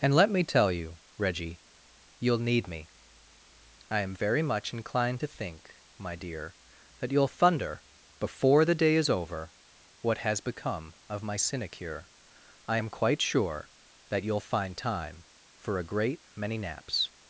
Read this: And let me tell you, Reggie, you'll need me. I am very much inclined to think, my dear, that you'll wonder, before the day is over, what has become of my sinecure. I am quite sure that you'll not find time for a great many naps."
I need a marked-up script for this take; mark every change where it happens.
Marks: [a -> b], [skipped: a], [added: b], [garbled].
And let me tell you, Reggie, you'll need me. I am very much inclined to think, my dear, that you'll [wonder, -> thunder] before the day is over, what has become of my sinecure. I am quite sure that you'll [skipped: not] find time for a great many naps."